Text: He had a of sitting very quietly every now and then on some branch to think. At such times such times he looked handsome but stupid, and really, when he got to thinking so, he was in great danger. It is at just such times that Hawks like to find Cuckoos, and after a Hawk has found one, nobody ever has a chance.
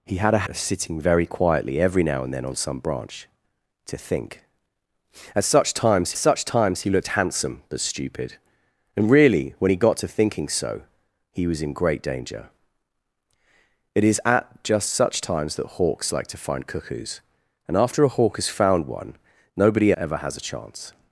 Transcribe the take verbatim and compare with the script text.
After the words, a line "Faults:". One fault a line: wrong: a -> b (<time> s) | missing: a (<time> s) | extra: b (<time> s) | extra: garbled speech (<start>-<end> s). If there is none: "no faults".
He had a of sitting very quietly every now and then on some branch to think. At such times such times he looked handsome but stupid, and really, when he got to thinking so, he was in great danger. It is at just such times that Hawks like to find Cuckoos, and after a Hawk has found one, nobody ever has a chance.
Faults:
no faults